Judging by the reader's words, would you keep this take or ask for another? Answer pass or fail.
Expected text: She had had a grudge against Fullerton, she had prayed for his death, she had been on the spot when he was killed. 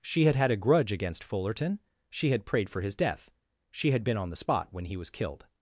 pass